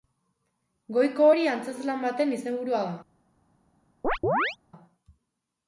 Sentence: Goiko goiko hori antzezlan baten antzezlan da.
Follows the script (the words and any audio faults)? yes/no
no